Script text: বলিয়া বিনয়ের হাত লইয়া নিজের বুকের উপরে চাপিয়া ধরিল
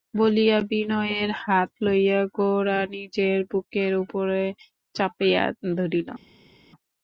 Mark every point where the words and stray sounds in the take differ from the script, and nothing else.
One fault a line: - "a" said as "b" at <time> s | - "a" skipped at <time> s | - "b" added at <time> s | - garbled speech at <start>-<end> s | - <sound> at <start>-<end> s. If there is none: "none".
- "গোরা" added at 2.4 s